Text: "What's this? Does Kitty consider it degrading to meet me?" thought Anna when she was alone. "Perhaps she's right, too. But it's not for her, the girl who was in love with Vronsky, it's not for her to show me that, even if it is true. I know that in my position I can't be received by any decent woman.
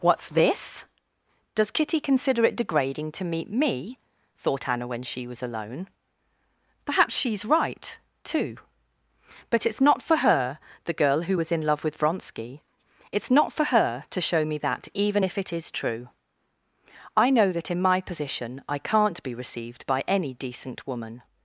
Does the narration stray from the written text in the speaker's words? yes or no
no